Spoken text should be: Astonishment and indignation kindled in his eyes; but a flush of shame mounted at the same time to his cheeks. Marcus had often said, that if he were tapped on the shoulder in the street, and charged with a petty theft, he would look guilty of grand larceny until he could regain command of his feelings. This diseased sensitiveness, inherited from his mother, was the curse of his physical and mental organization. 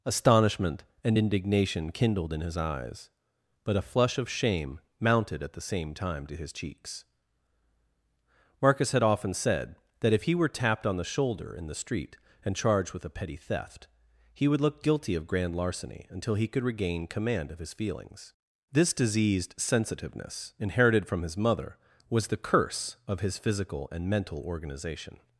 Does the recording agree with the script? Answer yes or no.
yes